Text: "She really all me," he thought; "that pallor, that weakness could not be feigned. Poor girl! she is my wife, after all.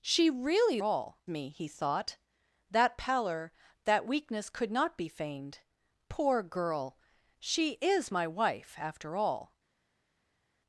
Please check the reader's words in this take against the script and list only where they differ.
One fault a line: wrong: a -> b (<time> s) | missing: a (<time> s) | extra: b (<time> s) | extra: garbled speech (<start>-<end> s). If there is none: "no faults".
no faults